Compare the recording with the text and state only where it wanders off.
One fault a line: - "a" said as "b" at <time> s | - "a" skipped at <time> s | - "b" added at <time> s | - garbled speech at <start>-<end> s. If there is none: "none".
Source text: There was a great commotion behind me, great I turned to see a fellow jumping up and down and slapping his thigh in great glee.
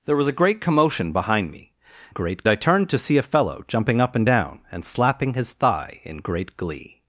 none